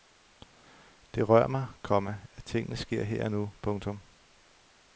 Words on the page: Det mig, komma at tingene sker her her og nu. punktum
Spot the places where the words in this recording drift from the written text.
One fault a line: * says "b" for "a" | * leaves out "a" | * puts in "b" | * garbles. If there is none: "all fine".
* puts in "rør"
* leaves out "her"